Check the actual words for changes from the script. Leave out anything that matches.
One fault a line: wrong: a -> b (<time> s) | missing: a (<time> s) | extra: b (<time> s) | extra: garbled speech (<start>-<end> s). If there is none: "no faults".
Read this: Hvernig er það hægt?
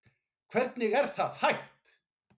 no faults